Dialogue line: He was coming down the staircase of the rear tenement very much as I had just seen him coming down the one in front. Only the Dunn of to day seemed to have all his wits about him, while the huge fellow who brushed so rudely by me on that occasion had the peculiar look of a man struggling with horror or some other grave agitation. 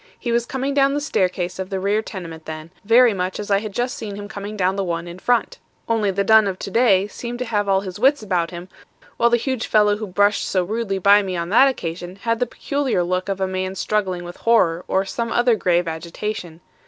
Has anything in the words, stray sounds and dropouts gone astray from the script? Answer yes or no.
yes